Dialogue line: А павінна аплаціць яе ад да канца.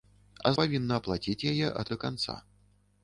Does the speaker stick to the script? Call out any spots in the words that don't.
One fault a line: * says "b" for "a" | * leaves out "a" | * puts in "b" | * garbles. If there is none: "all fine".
all fine